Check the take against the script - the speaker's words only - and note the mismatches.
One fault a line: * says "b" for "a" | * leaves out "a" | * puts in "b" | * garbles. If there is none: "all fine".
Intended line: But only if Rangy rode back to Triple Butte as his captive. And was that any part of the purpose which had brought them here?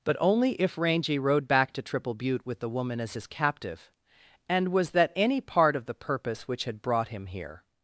* puts in "with the woman"
* says "him" for "them"